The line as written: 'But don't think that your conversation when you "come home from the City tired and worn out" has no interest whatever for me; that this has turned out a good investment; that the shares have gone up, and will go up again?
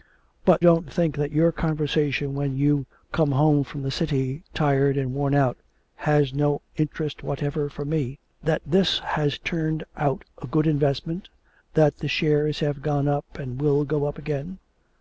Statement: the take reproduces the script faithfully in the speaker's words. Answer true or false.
true